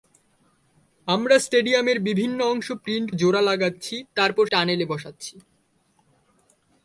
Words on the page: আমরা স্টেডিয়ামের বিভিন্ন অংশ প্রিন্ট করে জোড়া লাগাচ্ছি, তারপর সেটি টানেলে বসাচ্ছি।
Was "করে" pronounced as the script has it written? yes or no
no